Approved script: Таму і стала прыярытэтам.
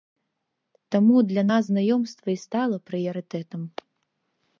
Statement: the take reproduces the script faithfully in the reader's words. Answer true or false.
false